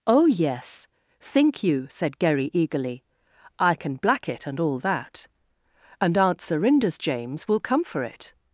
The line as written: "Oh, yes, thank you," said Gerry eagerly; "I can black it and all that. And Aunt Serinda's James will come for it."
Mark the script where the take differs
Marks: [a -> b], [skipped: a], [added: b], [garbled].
"Oh, yes, [thank -> think] you," said Gerry eagerly; "I can black it and all that. And Aunt Serinda's James will come for it."